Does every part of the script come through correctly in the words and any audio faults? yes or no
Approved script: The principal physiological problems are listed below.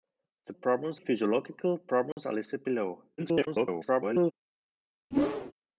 no